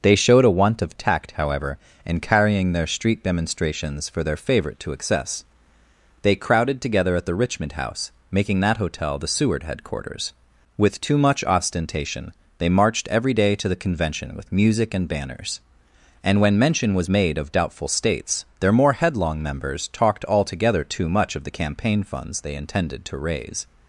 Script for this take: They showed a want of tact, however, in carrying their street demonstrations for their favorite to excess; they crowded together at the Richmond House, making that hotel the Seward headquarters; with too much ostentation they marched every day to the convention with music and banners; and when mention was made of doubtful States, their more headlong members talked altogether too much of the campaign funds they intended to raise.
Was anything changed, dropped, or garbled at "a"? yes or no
no